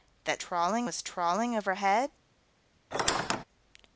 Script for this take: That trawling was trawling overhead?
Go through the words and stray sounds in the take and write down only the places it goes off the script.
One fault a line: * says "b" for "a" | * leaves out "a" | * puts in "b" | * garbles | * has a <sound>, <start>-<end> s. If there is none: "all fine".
* has a squeak, 2.9-3.4 s